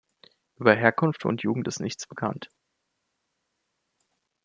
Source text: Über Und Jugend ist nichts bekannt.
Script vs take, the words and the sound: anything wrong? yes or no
yes